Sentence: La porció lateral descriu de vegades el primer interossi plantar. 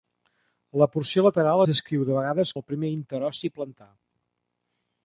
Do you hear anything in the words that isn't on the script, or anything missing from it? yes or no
no